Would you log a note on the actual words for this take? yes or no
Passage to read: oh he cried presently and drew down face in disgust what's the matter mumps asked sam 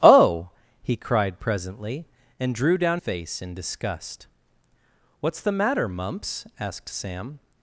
no